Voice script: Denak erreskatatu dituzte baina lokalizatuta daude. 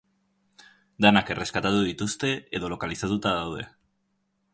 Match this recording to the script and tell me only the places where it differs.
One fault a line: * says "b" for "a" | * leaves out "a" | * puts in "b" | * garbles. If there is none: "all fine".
* says "edo" for "baina"